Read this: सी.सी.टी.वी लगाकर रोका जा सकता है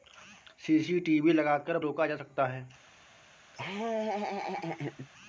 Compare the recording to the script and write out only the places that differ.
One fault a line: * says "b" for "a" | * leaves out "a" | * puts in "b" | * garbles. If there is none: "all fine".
all fine